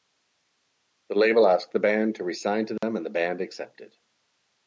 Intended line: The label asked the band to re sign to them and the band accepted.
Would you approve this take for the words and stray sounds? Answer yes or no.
no